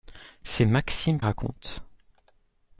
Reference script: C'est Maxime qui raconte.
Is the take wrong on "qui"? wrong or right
wrong